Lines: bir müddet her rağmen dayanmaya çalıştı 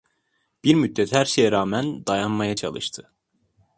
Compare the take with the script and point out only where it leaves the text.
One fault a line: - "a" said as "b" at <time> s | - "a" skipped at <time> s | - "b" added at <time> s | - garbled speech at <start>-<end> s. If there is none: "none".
- "şeye" added at 1.2 s